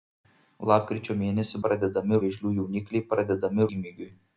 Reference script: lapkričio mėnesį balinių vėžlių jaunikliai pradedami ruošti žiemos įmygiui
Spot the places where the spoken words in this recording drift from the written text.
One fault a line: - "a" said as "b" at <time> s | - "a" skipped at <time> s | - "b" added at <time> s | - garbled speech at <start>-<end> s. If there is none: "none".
- "balinių" said as "pradedami" at 1.7 s
- "ruošti žiemos" skipped at 3.7 s